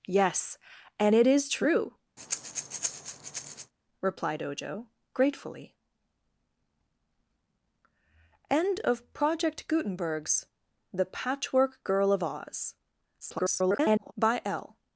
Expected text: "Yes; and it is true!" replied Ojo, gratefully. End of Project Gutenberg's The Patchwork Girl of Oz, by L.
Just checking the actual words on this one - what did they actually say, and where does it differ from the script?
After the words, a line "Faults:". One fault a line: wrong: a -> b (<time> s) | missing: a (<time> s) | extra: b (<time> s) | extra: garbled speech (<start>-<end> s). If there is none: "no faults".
"Yes; and it is true!" replied Ojo, gratefully. End of Project Gutenberg's The Patchwork Girl of Oz, [garbled] by L.
Faults:
extra: garbled speech (13.2-14.1 s)